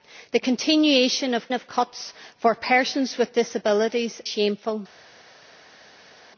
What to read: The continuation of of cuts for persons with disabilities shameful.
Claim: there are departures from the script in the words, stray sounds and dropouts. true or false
false